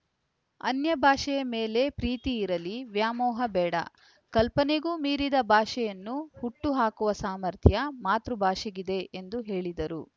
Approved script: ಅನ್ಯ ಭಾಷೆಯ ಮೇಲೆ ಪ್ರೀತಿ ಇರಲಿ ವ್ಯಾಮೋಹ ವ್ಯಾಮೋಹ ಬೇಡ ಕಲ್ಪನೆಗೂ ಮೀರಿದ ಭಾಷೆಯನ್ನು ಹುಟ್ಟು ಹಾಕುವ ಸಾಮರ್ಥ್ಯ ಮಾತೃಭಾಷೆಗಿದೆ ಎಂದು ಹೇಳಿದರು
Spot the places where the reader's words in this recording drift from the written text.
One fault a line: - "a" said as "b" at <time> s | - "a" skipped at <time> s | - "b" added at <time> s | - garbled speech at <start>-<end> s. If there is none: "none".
- "ವ್ಯಾಮೋಹ" skipped at 3.5 s